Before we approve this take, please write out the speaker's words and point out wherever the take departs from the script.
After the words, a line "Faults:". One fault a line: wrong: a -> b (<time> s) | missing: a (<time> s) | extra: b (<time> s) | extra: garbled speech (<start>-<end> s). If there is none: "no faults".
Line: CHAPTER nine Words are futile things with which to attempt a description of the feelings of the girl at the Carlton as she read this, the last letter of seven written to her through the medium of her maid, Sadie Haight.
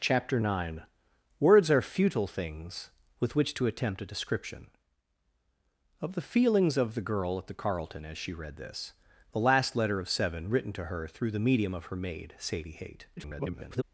CHAPTER nine Words are futile things with which to attempt a description of the feelings of the girl at the Carlton as she read this, the last letter of seven written to her through the medium of her maid, Sadie Haight. [garbled]
Faults:
extra: garbled speech (13.2-13.8 s)